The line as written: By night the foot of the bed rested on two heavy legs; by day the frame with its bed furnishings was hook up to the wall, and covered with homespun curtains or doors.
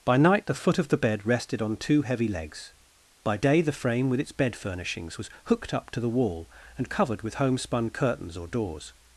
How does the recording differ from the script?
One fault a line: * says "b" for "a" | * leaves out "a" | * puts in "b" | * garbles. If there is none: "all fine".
* says "hooked" for "hook"